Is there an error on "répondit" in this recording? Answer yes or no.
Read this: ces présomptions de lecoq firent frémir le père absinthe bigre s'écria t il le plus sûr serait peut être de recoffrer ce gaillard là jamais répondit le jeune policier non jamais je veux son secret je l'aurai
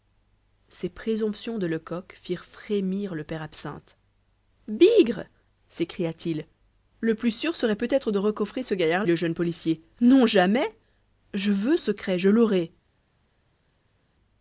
yes